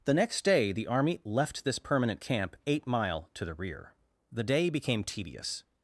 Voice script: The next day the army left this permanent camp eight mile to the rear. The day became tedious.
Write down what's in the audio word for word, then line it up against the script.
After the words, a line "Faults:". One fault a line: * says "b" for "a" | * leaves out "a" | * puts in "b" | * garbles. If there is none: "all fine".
The next day the army left this permanent camp eight mile to the rear. The day became tedious.
Faults:
all fine